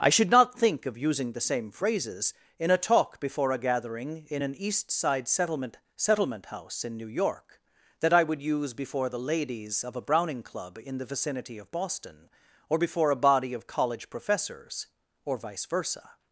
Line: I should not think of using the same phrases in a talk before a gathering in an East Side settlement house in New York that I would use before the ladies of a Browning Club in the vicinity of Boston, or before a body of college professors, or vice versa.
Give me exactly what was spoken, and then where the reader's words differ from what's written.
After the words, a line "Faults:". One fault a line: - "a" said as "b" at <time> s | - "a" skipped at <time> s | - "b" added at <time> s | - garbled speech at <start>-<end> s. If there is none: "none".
I should not think of using the same phrases in a talk before a gathering in an East Side settlement settlement house in New York that I would use before the ladies of a Browning Club in the vicinity of Boston, or before a body of college professors, or vice versa.
Faults:
- "settlement" added at 6.0 s